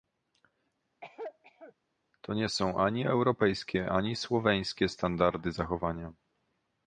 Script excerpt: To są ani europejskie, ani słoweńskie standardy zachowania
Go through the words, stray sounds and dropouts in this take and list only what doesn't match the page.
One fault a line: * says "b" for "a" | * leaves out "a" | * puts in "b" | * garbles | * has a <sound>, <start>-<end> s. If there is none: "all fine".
* has a cough, 1.0-1.7 s
* puts in "nie"